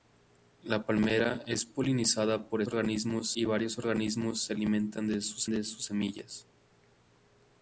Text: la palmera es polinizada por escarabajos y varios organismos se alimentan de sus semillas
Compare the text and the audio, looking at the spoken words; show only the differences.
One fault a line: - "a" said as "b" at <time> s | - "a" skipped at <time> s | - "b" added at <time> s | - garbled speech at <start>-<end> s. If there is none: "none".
- "escarabajos" said as "organismos" at 2.7 s
- "de sus" added at 5.5 s